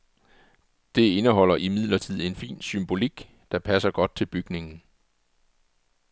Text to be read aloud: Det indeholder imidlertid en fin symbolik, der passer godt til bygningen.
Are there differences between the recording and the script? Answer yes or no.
no